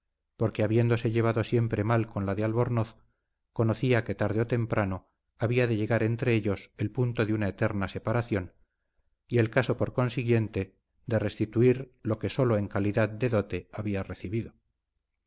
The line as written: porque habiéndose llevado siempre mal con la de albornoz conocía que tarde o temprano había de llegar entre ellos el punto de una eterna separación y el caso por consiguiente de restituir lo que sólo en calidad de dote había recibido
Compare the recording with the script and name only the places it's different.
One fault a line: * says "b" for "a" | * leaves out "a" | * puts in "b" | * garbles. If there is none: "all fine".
all fine